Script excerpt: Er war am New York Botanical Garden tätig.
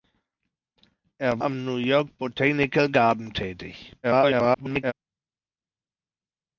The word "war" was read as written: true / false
false